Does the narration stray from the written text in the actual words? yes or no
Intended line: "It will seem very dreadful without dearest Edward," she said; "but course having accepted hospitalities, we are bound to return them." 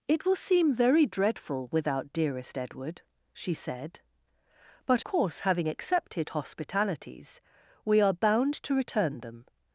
no